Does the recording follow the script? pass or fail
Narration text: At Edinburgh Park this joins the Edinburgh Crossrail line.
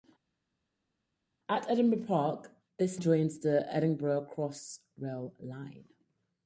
pass